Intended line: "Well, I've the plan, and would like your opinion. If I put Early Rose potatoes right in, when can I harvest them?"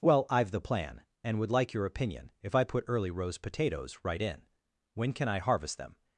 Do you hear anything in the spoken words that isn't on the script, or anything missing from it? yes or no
no